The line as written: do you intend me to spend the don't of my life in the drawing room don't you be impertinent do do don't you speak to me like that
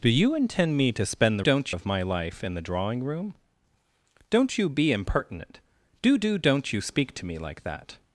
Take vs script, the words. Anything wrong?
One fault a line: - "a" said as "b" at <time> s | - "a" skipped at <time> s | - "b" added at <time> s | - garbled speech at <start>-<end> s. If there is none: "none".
none